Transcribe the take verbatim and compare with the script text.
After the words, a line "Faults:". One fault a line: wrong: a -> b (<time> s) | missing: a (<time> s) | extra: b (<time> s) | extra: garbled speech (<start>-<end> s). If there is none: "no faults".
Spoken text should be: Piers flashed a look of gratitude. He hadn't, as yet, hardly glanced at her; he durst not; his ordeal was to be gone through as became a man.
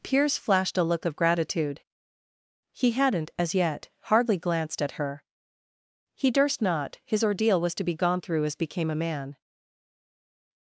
Piers flashed a look of gratitude. He hadn't, as yet, hardly glanced at her; he durst not; his ordeal was to be gone through as became a man.
Faults:
no faults